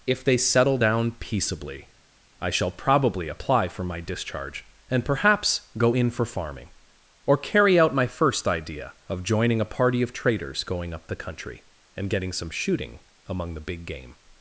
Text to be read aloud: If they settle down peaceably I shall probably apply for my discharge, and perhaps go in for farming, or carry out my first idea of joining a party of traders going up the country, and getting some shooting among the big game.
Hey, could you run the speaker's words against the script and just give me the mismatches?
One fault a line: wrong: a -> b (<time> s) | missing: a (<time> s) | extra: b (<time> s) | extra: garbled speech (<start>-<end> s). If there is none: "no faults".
no faults